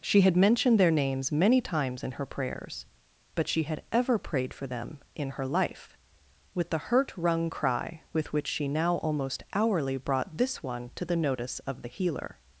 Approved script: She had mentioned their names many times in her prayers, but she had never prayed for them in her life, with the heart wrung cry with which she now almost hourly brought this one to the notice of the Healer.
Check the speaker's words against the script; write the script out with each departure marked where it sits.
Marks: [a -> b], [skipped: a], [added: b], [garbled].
She had mentioned their names many times in her prayers, but she had [never -> ever] prayed for them in her life, with the [heart -> hurt] wrung cry with which she now almost hourly brought this one to the notice of the Healer.